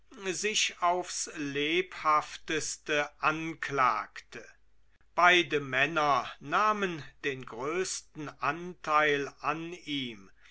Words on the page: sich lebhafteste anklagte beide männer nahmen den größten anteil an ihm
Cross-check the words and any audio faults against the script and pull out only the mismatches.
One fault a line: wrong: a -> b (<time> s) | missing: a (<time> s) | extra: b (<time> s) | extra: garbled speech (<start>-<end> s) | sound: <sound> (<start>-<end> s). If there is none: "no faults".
extra: aufs (0.8 s)